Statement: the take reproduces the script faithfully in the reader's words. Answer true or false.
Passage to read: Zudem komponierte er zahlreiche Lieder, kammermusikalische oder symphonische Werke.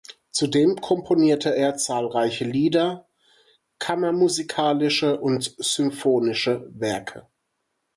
false